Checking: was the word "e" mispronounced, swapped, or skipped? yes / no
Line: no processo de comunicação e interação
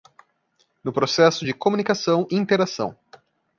yes